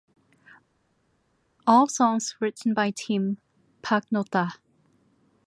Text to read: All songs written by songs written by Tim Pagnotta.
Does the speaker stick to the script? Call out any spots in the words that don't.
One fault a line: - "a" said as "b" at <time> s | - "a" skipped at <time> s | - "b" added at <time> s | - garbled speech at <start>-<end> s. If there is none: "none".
- "songs written by" skipped at 2.9 s